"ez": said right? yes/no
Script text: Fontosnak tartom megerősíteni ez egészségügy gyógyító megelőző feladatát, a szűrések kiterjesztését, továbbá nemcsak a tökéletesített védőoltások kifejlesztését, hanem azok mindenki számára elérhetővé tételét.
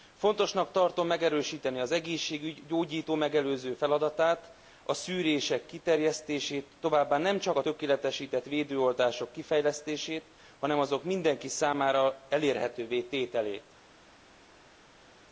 no